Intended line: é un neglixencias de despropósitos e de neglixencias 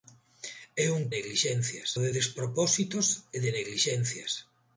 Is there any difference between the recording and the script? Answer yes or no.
no